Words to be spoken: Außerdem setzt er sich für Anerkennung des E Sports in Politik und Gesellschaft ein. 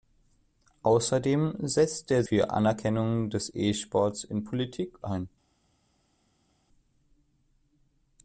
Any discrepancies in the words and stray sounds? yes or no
yes